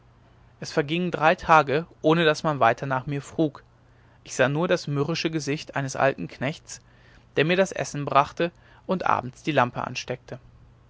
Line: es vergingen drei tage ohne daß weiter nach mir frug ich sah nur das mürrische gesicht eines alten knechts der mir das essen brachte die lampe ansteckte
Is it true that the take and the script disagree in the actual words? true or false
true